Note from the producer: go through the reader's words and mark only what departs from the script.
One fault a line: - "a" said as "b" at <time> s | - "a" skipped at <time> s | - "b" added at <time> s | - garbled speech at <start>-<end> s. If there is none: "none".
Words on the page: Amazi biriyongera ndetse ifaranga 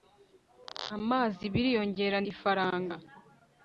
- "ndetse" skipped at 2.2 s